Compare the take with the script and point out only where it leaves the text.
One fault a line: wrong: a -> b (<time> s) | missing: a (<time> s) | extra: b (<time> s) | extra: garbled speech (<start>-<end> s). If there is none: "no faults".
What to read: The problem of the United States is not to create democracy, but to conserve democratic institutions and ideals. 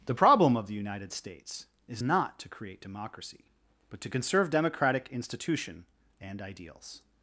wrong: institutions -> institution (5.1 s)